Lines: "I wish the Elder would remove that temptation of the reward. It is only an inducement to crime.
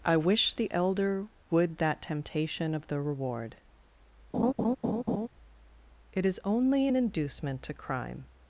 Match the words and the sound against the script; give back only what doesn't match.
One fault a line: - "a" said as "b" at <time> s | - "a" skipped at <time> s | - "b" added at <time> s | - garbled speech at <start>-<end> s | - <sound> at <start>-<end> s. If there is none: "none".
- "remove" skipped at 1.8 s
- laugh at 4.3-5.3 s